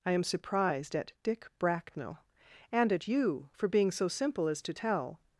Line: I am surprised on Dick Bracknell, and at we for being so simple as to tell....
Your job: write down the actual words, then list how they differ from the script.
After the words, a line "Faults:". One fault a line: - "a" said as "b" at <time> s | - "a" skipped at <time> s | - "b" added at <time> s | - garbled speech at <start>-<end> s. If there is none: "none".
I am surprised at Dick Bracknell, and at you for being so simple as to tell....
Faults:
- "on" said as "at" at 0.9 s
- "we" said as "you" at 3.1 s